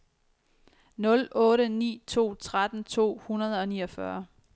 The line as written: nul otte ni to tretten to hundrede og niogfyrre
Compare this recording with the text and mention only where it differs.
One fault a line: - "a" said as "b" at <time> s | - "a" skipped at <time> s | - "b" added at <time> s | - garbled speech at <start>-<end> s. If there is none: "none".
none